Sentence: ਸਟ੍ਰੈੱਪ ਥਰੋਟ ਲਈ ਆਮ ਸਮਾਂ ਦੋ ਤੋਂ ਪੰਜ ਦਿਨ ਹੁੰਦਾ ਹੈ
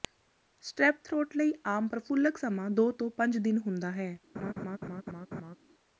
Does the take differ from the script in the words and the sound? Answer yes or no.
yes